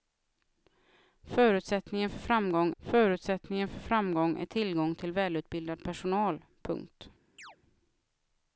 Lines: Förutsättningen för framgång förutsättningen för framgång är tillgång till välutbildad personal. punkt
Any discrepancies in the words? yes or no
no